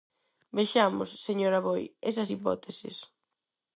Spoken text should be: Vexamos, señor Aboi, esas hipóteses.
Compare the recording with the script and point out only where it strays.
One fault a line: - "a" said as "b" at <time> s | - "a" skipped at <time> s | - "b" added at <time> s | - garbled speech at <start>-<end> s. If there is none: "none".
none